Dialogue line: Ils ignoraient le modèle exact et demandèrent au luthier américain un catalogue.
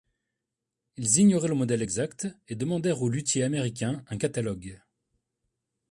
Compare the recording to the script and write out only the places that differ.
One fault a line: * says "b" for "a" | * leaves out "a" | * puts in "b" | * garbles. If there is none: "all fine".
all fine